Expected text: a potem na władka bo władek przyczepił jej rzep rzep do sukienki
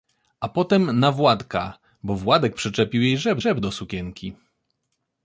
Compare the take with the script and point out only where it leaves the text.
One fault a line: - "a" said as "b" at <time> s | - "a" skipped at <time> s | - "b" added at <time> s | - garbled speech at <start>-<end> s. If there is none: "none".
none